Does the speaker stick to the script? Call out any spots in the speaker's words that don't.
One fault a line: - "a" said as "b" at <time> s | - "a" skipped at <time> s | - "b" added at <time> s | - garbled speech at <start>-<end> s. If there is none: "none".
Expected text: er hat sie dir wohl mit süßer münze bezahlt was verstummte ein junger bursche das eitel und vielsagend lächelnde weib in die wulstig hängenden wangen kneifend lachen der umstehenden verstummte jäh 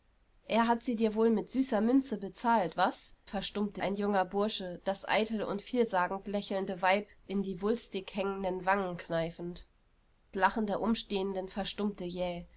none